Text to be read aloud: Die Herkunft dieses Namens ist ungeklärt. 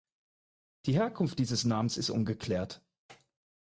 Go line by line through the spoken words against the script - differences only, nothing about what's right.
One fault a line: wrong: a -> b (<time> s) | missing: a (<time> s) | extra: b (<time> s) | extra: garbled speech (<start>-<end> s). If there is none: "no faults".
no faults